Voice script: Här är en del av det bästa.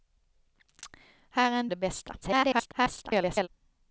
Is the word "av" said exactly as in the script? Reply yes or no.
no